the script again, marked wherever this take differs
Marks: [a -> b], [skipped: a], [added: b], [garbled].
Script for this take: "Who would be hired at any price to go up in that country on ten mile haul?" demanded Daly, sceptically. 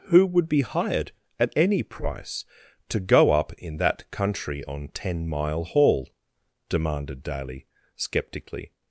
"Who would be hired at any price to go up in that country on ten mile haul?" demanded Daly, sceptically.